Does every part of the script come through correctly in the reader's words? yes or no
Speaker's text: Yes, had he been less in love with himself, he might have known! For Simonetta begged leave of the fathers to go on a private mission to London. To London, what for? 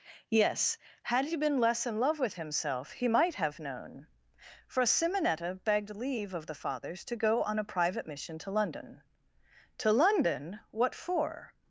yes